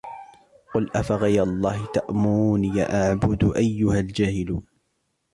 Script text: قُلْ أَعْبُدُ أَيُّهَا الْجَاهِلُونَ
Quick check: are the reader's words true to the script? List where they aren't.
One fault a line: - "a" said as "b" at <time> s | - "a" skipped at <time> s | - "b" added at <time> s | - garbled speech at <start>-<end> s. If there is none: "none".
- "أَفَغَيْرَ اللَّهِ تَأْمُرُونِّي" added at 0.9 s